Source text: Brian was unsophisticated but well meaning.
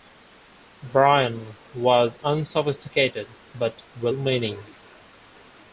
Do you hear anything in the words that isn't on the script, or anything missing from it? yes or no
no